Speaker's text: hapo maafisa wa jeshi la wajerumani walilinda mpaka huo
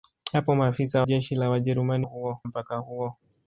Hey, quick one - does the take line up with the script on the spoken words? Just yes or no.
no